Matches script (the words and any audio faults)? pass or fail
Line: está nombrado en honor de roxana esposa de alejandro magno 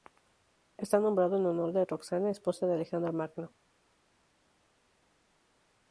pass